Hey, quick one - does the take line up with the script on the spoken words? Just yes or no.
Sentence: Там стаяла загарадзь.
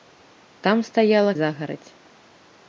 yes